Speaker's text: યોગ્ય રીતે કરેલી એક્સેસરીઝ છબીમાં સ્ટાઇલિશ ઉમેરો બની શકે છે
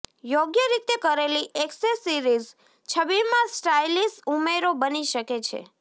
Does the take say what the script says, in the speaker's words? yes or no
yes